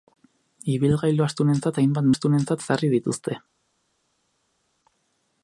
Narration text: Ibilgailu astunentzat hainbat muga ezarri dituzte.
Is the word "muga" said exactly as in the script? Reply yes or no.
no